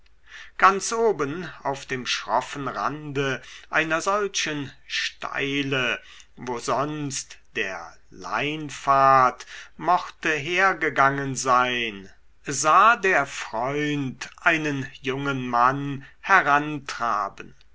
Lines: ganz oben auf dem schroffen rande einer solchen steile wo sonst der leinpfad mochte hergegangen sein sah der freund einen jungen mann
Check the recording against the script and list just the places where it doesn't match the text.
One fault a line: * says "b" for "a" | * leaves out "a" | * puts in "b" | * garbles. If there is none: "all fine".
all fine